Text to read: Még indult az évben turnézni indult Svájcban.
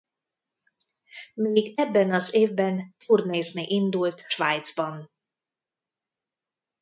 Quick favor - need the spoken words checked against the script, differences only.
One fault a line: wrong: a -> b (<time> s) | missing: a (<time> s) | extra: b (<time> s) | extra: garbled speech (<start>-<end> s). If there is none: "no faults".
wrong: indult -> ebben (1.8 s)